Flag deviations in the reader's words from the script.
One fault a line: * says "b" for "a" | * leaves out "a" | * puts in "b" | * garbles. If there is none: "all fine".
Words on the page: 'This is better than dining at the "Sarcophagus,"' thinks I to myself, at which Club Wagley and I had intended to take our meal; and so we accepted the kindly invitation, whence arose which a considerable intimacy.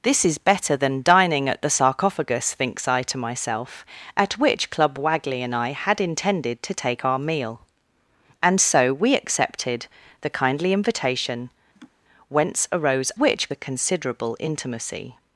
all fine